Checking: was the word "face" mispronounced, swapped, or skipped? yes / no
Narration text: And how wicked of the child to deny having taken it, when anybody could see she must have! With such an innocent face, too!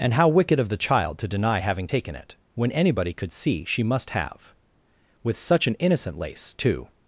yes